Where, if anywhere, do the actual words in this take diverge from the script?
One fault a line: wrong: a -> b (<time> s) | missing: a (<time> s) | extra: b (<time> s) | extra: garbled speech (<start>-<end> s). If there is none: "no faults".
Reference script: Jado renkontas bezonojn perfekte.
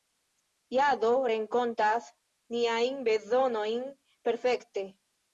extra: niajn (2.6 s)